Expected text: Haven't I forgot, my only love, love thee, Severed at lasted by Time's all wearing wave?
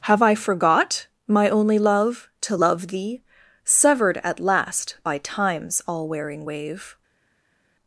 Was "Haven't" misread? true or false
true